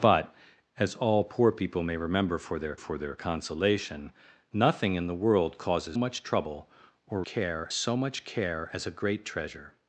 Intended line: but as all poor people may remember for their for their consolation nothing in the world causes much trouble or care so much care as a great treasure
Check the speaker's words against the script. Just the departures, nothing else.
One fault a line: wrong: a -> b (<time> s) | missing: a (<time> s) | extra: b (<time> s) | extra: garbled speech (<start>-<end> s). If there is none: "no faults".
no faults